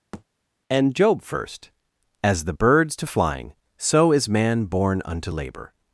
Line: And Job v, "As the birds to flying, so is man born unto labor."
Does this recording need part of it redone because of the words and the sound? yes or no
yes